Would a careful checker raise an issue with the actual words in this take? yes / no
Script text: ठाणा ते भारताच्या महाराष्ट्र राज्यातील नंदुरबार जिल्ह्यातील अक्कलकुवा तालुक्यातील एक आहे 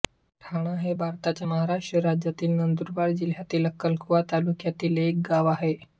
yes